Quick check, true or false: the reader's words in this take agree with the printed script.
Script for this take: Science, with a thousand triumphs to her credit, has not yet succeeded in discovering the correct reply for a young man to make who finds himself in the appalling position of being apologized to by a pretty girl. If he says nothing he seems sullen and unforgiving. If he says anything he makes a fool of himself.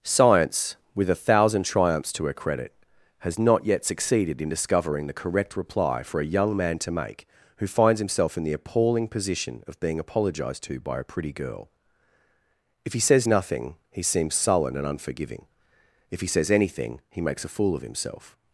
true